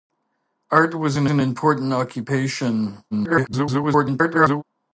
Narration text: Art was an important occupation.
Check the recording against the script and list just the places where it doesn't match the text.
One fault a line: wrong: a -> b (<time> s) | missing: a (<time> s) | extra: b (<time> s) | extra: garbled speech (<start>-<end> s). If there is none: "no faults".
extra: an (1.3 s)
extra: garbled speech (3.1-4.6 s)